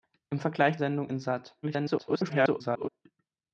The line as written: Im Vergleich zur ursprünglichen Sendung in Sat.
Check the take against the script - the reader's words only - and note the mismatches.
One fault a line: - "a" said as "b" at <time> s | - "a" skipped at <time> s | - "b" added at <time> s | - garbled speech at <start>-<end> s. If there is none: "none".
- "zur ursprünglichen" skipped at 0.8 s
- garbled speech at 1.6-2.9 s